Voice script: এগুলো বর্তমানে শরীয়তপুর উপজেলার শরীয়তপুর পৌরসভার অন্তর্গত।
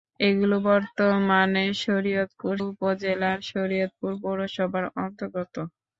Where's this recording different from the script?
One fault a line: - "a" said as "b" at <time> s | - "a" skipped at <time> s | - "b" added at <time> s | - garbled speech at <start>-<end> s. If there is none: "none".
none